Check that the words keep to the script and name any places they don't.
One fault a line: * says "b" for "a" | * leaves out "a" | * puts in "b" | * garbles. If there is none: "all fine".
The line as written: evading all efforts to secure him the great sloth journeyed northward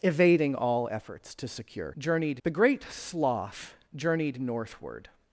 * says "journeyed" for "him"